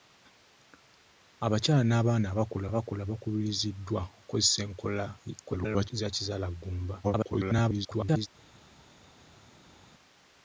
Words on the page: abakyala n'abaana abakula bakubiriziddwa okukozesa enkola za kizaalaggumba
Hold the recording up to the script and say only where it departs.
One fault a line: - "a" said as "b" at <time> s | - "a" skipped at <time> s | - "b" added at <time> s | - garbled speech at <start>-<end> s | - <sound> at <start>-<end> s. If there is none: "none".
- "abakula" added at 2.7 s
- garbled speech at 5.4-5.9 s
- garbled speech at 7.0-8.3 s